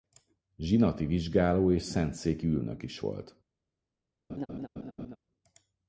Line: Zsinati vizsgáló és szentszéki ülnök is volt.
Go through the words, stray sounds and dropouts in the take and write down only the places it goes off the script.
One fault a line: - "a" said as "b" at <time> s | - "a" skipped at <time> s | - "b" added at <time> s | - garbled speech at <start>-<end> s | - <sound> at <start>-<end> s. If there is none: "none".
- laugh at 4.3-5.2 s